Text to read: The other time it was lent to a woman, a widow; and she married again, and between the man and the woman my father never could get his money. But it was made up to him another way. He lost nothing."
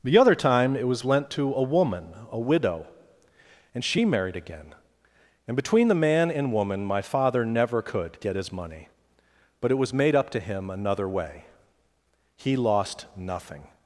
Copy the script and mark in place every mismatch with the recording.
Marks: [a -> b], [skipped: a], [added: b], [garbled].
The other time it was lent to a woman, a widow; and she married again, and between the man and [skipped: the] woman my father never could get his money. But it was made up to him another way. He lost nothing."